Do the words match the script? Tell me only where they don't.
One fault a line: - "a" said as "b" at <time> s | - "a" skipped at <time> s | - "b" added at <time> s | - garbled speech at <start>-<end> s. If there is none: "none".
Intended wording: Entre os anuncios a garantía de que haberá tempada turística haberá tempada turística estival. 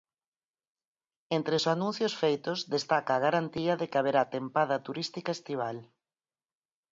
- "feitos destaca" added at 2.2 s
- "haberá tempada turística" skipped at 5.3 s